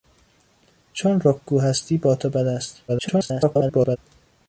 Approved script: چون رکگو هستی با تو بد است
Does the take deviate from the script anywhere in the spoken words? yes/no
yes